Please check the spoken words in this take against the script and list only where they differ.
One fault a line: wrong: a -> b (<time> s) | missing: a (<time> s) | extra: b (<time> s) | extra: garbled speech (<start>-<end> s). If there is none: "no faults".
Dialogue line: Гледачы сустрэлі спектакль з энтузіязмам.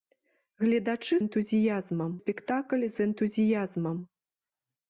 wrong: сустрэлі -> энтузіязмам (1.2 s)